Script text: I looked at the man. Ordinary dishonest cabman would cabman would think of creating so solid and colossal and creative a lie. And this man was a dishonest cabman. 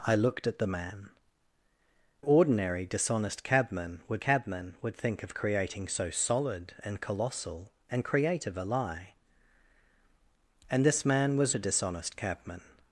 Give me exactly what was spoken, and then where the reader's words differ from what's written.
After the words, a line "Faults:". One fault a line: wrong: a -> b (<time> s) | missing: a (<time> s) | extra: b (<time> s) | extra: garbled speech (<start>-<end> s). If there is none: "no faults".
I looked at the man. Ordinary dishonest cabman would cabman would think of creating so solid and colossal and creative a lie. And this man was a dishonest cabman.
Faults:
no faults